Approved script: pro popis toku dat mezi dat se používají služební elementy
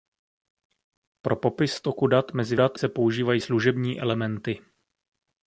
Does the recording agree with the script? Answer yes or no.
yes